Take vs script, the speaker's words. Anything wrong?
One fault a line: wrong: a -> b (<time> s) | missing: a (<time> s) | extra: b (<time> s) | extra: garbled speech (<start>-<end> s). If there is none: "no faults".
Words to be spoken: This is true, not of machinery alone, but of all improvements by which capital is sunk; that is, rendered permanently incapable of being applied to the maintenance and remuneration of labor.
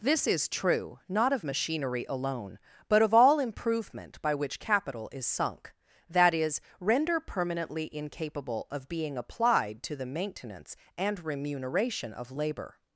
wrong: improvements -> improvement (3.4 s)
wrong: rendered -> render (6.8 s)